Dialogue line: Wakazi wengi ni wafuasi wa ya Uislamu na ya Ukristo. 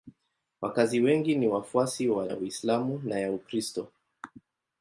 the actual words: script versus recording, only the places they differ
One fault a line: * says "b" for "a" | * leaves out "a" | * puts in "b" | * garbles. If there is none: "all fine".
all fine